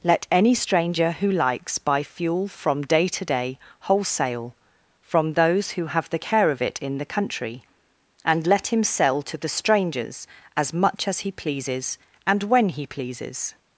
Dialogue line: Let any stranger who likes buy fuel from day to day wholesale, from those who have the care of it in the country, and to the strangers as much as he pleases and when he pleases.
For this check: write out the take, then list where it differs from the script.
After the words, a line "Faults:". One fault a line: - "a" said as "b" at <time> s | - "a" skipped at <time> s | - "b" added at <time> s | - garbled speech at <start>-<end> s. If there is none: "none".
Let any stranger who likes buy fuel from day to day wholesale, from those who have the care of it in the country, and let him sell to the strangers as much as he pleases and when he pleases.
Faults:
- "let him sell" added at 8.5 s